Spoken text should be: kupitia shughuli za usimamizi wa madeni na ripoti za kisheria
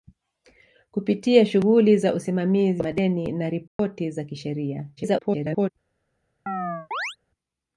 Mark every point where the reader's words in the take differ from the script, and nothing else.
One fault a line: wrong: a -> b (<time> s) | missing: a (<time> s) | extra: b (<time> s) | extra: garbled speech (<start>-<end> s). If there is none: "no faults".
extra: garbled speech (5.0-5.7 s)